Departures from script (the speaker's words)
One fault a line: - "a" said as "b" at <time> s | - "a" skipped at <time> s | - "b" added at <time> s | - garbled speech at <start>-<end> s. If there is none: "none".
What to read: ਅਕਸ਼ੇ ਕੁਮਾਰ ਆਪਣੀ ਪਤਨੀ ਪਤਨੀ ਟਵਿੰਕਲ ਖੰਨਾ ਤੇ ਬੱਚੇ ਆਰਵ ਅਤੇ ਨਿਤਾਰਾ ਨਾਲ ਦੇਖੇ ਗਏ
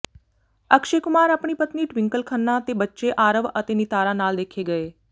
- "ਪਤਨੀ" skipped at 1.9 s